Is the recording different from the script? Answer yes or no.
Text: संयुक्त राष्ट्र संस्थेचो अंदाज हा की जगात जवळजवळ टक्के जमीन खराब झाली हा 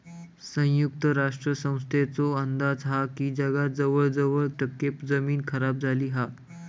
no